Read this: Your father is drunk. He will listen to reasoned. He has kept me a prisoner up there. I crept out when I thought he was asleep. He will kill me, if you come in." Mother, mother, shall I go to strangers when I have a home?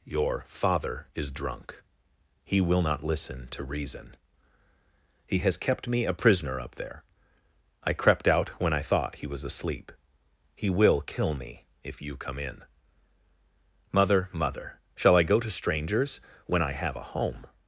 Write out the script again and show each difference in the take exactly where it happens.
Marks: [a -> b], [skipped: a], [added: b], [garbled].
Your father is drunk. He will [added: not] listen to [reasoned. -> reason] He has kept me a prisoner up there. I crept out when I thought he was asleep. He will kill me, if you come in." Mother, mother, shall I go to strangers when I have a home?